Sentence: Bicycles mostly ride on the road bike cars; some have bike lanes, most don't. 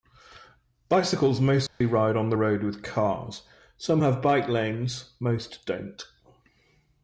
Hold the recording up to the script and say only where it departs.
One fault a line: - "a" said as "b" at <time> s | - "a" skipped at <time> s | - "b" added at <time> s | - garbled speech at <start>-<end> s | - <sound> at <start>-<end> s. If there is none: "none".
- dropout at 1.7-1.8 s
- "bike" said as "with" at 2.6 s